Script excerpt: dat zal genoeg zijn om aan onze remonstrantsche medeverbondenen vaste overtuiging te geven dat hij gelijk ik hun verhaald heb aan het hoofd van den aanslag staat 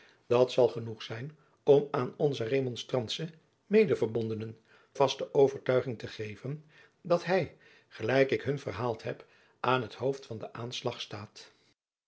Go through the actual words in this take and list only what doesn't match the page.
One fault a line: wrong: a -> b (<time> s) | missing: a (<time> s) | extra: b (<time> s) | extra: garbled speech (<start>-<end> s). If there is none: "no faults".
no faults